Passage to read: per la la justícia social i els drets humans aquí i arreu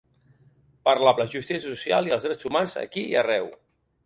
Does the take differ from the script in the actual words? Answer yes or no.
no